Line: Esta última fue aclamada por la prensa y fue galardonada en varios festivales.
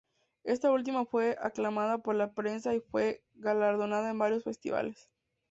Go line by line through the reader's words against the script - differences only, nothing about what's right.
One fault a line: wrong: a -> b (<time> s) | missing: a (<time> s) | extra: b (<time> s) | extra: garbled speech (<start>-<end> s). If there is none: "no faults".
no faults